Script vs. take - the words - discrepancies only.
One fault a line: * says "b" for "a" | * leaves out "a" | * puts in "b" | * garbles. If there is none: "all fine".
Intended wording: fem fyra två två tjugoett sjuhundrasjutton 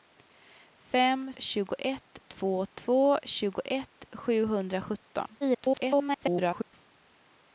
* says "tjugoett" for "fyra"
* garbles